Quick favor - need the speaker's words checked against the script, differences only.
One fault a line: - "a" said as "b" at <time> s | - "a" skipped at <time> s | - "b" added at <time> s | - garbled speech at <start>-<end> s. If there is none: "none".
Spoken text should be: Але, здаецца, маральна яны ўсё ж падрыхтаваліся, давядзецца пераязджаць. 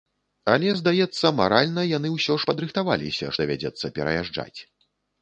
none